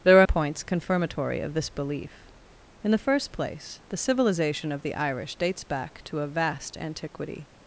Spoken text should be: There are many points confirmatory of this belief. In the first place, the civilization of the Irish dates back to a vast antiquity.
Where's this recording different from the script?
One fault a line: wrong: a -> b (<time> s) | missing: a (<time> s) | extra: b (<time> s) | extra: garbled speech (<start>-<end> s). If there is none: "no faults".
missing: many (0.3 s)